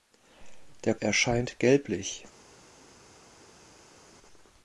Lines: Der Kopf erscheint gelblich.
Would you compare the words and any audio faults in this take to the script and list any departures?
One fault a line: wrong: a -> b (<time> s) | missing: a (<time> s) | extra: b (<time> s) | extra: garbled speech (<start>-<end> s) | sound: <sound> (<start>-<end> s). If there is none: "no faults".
missing: Kopf (0.9 s)